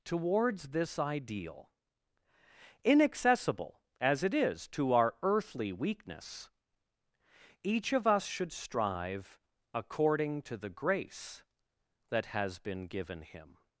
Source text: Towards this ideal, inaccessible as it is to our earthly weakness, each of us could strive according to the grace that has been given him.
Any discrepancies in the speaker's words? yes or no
yes